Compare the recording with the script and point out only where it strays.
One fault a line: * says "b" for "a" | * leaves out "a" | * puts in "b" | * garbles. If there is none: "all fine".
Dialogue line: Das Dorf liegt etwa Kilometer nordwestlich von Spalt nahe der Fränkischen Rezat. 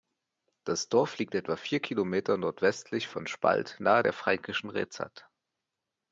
* puts in "vier"